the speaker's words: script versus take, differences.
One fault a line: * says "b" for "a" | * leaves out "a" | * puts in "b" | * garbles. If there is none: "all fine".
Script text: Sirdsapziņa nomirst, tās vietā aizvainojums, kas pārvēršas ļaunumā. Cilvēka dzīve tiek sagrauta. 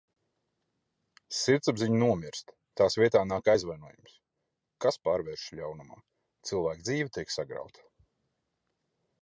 * puts in "nāk"